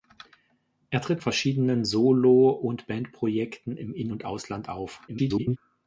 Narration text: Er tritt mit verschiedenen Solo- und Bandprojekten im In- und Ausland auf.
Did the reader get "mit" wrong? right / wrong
wrong